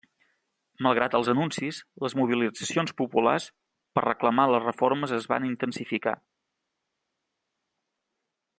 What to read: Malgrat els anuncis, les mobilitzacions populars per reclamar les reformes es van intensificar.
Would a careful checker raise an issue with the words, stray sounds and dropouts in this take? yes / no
no